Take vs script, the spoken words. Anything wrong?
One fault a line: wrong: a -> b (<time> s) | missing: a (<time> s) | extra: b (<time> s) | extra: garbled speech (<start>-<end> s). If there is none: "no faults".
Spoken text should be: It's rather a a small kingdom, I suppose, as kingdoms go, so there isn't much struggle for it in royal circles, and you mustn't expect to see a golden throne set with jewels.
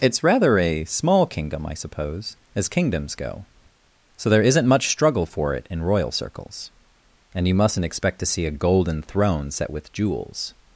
missing: a (0.8 s)